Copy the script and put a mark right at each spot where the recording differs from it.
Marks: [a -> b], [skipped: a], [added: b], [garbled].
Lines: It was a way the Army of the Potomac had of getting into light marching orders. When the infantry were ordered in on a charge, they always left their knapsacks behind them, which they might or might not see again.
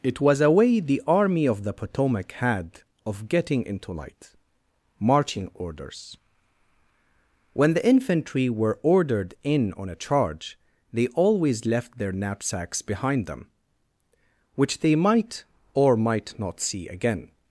It was a way the Army of the Potomac had of getting into light marching orders. When the infantry were ordered in on a charge, they always left their knapsacks behind them, which they might or might not see again.